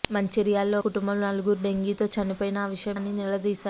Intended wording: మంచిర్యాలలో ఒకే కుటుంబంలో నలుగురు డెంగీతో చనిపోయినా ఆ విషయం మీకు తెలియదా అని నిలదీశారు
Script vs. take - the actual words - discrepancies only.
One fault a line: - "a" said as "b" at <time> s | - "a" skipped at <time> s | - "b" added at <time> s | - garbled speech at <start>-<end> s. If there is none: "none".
- "ఒకే" skipped at 0.8 s
- "మీకు తెలియదా" skipped at 3.0 s